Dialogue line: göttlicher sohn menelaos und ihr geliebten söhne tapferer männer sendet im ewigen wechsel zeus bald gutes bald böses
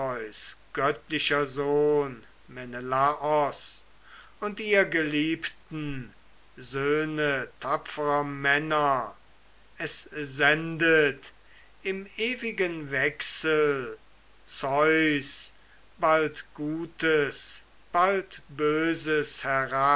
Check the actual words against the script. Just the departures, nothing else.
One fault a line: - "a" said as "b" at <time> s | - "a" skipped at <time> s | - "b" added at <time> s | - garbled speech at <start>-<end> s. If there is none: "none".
- "es" added at 9.8 s